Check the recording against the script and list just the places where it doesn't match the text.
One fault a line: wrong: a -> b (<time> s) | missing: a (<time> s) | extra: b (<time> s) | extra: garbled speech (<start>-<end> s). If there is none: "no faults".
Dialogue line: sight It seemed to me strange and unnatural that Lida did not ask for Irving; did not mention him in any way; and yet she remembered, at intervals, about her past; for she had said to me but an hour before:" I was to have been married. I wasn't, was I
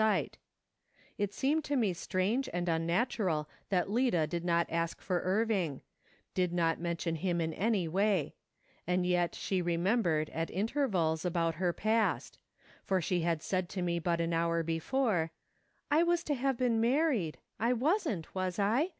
no faults